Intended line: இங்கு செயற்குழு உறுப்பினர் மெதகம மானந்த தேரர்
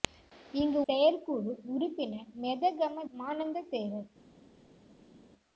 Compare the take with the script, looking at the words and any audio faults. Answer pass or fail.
pass